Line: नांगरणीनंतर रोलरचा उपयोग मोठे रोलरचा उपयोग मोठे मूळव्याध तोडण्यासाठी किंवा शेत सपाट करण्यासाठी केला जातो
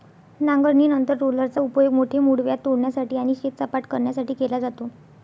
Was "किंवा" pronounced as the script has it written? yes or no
no